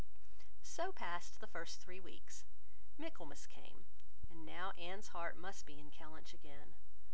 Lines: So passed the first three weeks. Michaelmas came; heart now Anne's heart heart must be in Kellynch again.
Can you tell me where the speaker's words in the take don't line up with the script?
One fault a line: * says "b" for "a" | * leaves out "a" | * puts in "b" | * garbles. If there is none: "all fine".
* says "and" for "heart"
* leaves out "heart"